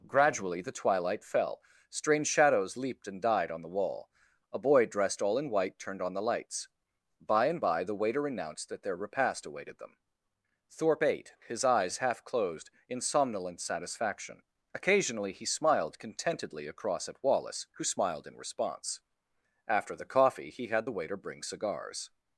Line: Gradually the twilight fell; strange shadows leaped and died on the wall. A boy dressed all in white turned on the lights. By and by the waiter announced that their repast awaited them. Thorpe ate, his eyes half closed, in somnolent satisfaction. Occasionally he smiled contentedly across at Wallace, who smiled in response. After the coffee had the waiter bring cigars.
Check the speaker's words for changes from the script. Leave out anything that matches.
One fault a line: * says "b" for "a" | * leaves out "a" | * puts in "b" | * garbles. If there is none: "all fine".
* puts in "he"